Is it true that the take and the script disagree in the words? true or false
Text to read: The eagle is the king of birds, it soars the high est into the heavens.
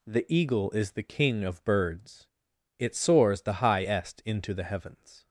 false